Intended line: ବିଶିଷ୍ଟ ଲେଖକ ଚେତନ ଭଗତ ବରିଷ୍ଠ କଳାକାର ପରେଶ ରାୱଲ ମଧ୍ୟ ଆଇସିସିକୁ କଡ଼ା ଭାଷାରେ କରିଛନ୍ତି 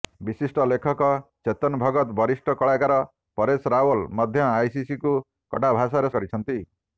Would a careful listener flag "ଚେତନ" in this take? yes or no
no